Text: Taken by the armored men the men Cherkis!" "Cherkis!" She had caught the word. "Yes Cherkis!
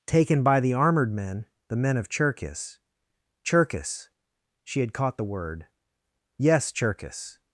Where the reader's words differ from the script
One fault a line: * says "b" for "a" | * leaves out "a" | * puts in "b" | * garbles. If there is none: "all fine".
* puts in "of"